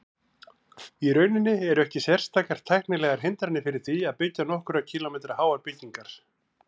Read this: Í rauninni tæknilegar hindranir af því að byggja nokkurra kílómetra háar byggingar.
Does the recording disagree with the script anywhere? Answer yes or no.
yes